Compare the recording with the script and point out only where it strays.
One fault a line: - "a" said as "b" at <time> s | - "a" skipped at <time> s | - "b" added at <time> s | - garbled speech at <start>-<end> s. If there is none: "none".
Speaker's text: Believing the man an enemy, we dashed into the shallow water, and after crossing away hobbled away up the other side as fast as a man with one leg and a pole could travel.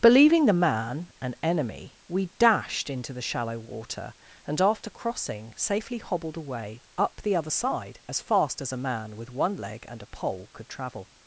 - "away" said as "safely" at 5.6 s